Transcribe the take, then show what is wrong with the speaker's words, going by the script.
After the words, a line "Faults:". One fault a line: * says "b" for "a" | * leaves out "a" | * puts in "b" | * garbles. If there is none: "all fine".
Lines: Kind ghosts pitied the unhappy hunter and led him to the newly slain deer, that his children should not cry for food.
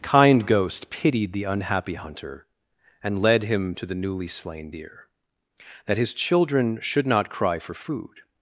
Kind ghost pitied the unhappy hunter and led him to the newly slain deer, that his children should not cry for food.
Faults:
* says "ghost" for "ghosts"